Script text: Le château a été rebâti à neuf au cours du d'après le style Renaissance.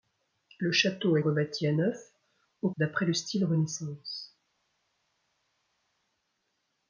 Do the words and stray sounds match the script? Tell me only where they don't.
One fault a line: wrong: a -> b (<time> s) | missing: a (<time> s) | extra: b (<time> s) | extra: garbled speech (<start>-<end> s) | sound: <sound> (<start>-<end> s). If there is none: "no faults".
missing: été (1.2 s)
missing: cours du (2.7 s)